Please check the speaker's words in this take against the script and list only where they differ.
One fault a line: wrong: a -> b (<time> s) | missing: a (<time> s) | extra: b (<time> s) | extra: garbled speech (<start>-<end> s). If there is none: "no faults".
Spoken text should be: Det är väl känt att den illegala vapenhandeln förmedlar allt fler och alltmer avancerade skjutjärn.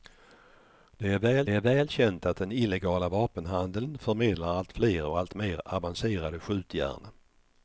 extra: är väl (1.5 s)